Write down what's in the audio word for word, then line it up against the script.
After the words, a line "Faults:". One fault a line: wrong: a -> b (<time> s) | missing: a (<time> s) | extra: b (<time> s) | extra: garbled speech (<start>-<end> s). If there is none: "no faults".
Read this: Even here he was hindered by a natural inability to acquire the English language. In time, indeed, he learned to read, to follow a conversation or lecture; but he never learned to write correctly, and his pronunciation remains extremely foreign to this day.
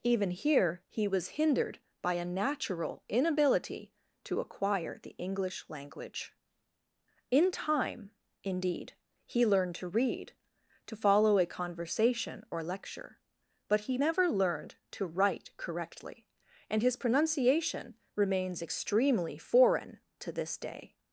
Even here he was hindered by a natural inability to acquire the English language. In time, indeed, he learned to read, to follow a conversation or lecture; but he never learned to write correctly, and his pronunciation remains extremely foreign to this day.
Faults:
no faults